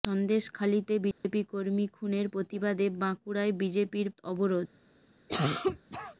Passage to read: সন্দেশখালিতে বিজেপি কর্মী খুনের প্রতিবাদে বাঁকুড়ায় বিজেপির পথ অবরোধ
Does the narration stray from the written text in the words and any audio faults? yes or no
yes